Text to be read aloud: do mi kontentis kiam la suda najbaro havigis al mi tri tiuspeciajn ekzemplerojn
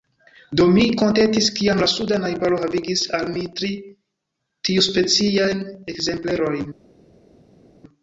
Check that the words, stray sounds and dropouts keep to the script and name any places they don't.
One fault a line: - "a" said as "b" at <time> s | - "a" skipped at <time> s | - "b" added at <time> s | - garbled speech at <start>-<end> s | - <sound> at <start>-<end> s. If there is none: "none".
none